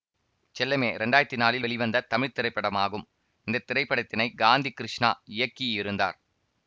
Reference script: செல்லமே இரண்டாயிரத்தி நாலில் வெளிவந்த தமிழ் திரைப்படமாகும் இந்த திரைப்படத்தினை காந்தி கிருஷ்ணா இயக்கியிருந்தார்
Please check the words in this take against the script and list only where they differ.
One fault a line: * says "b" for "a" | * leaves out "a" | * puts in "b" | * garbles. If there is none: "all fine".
all fine